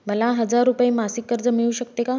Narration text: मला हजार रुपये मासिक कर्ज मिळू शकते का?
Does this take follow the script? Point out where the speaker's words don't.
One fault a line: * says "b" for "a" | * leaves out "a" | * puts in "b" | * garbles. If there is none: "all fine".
all fine